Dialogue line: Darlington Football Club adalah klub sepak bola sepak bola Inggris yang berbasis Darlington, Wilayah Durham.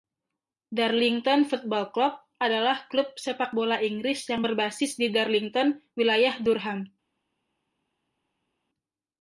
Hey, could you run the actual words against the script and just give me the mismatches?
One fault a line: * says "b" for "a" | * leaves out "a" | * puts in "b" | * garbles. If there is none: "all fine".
* leaves out "sepak bola"
* puts in "di"